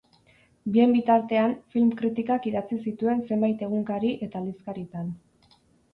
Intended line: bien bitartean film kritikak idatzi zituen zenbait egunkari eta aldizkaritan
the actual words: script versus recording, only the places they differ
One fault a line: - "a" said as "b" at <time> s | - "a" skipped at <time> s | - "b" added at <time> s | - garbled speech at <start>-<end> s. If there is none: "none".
none